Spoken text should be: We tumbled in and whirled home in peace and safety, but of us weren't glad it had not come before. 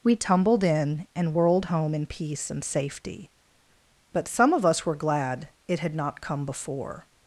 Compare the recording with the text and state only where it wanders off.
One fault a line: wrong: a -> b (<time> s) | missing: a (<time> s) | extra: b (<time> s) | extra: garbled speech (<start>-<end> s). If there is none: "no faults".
extra: some (4.3 s)
wrong: weren't -> were (4.9 s)